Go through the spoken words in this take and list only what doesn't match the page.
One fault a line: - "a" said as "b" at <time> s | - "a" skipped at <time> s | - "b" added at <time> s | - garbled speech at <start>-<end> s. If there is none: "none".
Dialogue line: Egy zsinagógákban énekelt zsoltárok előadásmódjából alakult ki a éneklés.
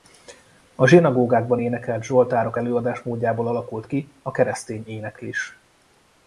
- "Egy" said as "A" at 0.8 s
- "keresztény" added at 4.3 s